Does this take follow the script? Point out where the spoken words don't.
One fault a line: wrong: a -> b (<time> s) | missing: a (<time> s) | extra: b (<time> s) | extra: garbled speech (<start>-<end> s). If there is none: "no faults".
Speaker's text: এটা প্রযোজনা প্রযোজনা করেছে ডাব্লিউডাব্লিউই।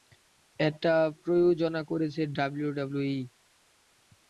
missing: প্রযোজনা (1.8 s)